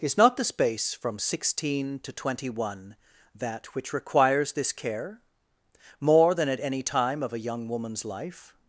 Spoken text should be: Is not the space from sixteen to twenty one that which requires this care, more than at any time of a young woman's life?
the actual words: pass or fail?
pass